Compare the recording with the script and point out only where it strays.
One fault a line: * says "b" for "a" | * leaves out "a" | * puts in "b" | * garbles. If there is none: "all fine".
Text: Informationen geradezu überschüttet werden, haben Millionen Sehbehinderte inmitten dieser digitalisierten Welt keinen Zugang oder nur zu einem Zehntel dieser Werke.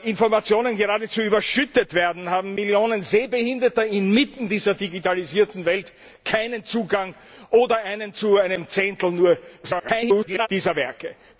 * garbles